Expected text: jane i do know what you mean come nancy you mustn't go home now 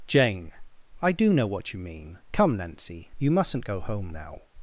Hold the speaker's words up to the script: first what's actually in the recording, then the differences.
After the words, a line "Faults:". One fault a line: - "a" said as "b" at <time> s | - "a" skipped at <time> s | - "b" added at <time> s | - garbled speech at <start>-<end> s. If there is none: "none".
jane i do know what you mean come nancy you mustn't go home now
Faults:
none